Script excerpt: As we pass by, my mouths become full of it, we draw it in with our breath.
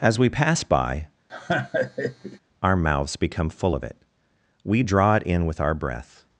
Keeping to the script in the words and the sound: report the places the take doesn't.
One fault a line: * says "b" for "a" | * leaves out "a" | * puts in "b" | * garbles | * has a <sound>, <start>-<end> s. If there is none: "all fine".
* has a laugh, 1.3-2.4 s
* says "our" for "my"